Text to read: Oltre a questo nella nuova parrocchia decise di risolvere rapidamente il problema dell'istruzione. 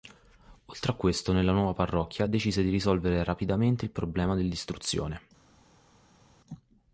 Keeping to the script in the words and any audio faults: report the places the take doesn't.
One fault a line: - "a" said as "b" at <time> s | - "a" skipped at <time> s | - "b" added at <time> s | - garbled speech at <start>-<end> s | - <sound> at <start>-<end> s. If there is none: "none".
none